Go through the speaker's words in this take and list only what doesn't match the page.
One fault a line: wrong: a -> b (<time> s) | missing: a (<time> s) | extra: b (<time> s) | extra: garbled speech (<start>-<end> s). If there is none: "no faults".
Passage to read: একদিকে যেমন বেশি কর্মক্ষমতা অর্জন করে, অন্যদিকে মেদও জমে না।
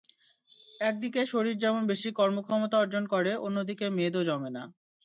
extra: শরীর (1.3 s)